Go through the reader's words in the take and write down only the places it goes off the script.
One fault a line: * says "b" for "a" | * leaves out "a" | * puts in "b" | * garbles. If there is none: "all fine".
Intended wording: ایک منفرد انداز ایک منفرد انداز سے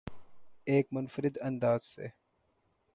* leaves out "ایک منفرد انداز"